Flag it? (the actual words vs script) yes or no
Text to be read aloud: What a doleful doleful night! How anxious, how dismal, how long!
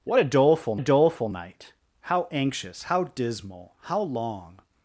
no